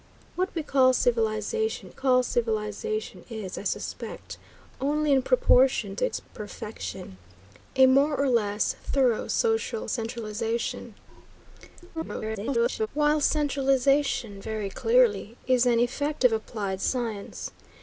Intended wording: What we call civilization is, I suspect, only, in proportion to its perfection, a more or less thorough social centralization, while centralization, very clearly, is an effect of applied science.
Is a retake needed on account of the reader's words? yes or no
yes